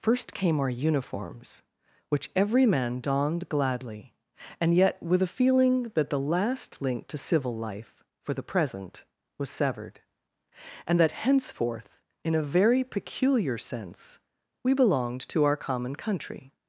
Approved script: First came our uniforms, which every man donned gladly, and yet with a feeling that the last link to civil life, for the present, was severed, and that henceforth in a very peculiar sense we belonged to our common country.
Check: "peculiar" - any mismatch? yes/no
no